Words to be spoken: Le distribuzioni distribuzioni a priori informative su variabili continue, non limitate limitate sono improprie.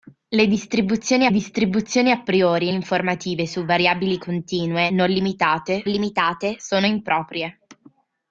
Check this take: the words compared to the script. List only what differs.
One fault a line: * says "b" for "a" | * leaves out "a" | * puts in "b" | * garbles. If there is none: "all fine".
all fine